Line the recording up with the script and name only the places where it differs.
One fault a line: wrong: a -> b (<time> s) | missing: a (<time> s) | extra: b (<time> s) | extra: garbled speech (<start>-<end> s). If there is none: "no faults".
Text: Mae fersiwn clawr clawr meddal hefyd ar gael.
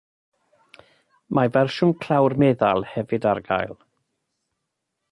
missing: clawr (2.4 s)